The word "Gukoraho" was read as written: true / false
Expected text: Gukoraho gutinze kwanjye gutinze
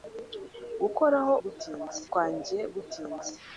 true